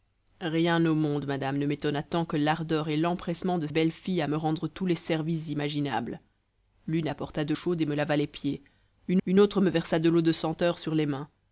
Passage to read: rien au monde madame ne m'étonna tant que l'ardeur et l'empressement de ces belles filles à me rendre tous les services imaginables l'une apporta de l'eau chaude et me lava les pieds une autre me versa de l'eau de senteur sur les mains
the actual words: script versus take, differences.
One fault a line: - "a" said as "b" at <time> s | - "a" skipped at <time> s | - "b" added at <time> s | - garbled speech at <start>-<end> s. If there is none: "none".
- "ces" skipped at 3.7 s
- "l'eau" skipped at 7.5 s
- "une" added at 9.2 s